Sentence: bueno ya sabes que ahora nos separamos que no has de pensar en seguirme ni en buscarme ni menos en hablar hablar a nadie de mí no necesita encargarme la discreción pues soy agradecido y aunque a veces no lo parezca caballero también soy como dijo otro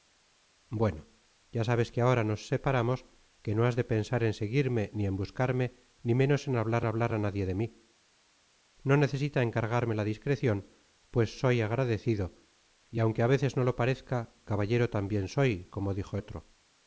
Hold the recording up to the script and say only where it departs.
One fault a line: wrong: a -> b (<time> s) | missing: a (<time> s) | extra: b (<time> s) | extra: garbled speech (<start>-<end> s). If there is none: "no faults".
no faults